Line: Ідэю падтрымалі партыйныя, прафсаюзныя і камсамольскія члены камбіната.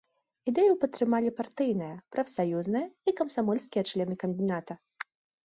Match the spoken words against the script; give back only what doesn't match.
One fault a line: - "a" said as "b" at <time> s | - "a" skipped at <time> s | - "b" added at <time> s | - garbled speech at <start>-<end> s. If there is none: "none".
none